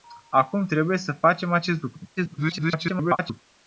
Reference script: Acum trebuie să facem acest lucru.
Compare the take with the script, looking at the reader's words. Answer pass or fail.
fail